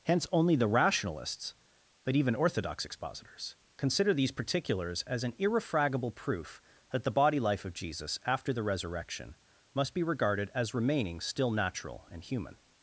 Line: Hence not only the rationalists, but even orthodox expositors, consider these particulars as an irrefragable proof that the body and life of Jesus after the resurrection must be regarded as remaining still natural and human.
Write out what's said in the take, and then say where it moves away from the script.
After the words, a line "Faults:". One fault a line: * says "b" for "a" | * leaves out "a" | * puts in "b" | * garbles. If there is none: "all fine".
Hence only the rationalists, but even orthodox expositors, consider these particulars as an irrefragable proof that the body life of Jesus after the resurrection must be regarded as remaining still natural and human.
Faults:
* leaves out "not"
* leaves out "and"